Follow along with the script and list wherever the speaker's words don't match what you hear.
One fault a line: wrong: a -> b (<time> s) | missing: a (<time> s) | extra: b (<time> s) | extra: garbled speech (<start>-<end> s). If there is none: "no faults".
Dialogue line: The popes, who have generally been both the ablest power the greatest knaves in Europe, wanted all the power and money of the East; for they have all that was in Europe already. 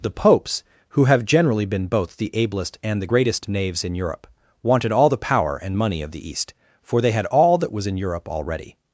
wrong: power -> and (2.8 s)
wrong: have -> had (7.1 s)